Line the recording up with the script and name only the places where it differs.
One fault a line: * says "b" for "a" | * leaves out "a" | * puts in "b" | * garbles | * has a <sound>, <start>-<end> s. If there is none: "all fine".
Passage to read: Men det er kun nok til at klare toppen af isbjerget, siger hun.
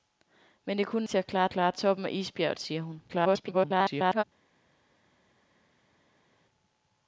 * leaves out "nok"
* puts in "klare"
* garbles